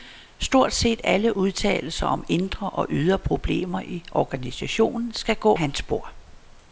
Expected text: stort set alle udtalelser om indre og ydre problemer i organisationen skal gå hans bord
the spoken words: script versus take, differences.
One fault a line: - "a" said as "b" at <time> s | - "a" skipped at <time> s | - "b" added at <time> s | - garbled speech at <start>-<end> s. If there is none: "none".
none